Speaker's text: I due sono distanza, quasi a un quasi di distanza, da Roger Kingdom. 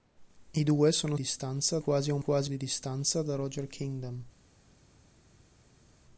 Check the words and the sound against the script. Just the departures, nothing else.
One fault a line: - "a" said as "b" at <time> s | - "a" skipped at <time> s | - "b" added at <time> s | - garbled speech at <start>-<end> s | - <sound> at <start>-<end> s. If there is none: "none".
none